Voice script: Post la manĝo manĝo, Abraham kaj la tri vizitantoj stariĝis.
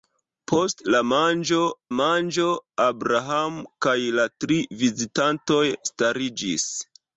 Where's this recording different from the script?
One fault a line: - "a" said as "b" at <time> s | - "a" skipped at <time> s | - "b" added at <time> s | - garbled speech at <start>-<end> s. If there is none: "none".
none